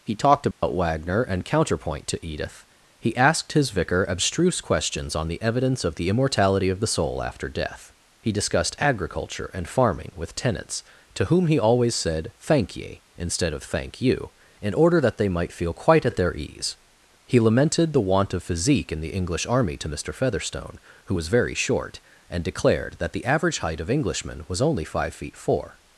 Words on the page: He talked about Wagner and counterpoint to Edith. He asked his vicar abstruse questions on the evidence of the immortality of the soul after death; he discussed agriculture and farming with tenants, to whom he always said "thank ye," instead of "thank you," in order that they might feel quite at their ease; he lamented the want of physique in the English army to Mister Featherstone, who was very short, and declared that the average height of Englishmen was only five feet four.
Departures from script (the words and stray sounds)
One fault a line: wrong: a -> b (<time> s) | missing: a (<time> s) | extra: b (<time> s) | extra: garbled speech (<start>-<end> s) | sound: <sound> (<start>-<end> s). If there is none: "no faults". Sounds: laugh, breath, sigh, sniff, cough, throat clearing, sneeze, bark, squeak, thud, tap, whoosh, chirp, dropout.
sound: dropout (0.5-0.6 s)